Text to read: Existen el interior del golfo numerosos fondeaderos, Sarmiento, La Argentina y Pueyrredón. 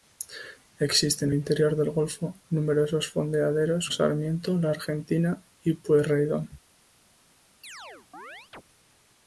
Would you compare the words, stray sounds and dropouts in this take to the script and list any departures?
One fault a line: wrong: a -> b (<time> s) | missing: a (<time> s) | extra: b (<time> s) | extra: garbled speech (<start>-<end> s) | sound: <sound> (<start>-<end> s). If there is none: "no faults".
sound: chirp (7.6-8.6 s)